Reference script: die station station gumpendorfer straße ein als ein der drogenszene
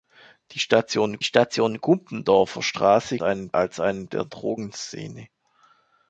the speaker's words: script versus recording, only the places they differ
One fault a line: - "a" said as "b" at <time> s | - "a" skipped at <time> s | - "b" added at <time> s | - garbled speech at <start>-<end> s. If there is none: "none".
none